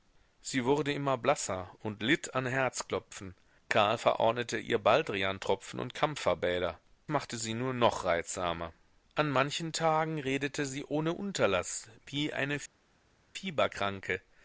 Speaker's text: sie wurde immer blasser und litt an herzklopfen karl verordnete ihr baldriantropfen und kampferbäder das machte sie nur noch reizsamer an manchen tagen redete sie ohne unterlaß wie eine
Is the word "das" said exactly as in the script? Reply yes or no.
no